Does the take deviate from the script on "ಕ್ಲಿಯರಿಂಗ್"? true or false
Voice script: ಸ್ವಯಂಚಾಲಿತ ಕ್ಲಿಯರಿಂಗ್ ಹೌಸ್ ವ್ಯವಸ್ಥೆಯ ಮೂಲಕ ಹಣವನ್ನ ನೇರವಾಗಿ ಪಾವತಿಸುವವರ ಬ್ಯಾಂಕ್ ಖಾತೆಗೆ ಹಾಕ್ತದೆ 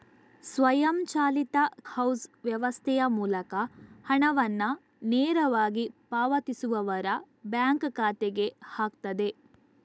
true